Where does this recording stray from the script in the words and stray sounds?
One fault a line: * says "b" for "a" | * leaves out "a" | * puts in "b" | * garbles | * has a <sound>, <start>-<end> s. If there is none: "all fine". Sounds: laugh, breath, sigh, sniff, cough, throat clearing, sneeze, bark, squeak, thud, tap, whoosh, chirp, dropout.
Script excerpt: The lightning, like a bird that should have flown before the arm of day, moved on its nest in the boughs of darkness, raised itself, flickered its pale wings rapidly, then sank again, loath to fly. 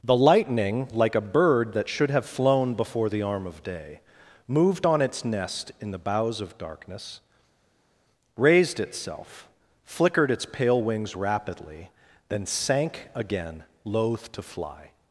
all fine